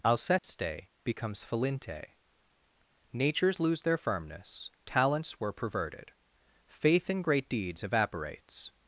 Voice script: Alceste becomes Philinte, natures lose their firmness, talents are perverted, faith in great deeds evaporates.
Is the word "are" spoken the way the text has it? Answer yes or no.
no